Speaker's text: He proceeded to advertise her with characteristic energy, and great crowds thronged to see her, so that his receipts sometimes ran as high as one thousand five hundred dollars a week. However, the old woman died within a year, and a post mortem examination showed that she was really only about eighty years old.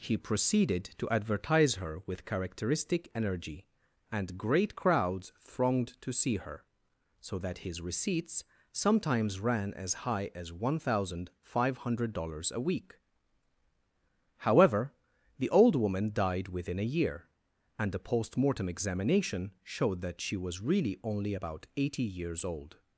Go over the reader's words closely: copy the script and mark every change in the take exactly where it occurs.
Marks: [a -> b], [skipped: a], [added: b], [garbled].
He proceeded to advertise her with characteristic energy, and great crowds thronged to see her, so that his receipts sometimes ran as high as one thousand five hundred dollars a week. However, the old woman died within a year, and a post mortem examination showed that she was really only about eighty years old.